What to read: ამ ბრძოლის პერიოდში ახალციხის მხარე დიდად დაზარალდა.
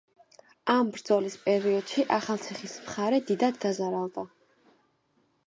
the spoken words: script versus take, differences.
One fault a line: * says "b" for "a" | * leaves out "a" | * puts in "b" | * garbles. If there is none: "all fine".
all fine